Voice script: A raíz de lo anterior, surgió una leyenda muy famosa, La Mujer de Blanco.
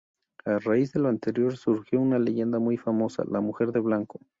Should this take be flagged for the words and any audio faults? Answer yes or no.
no